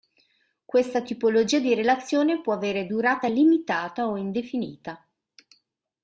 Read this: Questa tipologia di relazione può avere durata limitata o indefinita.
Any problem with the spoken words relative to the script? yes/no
no